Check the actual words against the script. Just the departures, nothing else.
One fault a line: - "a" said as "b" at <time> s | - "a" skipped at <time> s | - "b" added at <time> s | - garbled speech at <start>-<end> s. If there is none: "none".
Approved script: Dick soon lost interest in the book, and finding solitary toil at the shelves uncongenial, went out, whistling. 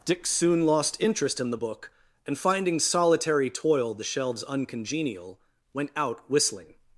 - "at" skipped at 3.9 s